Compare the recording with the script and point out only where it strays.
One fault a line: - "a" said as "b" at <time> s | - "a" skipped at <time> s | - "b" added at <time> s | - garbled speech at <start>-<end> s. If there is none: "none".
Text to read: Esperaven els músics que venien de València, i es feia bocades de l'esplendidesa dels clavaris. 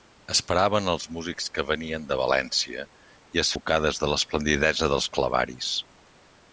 - "feia" skipped at 3.5 s